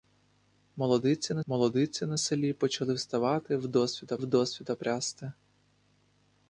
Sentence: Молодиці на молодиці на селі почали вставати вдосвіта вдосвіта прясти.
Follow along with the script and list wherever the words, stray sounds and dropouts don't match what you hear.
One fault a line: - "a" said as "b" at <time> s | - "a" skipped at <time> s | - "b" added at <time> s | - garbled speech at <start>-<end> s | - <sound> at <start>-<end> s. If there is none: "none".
none